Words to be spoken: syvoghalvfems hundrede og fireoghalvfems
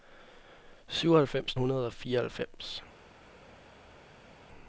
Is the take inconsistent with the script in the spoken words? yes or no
no